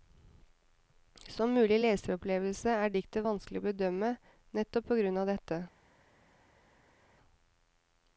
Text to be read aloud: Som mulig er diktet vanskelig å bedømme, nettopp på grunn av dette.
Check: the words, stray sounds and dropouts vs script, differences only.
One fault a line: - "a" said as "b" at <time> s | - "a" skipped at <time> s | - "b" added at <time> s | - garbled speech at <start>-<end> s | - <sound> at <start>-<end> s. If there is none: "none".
- "leseropplevelse" added at 1.8 s